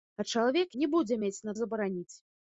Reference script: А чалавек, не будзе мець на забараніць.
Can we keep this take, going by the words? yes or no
yes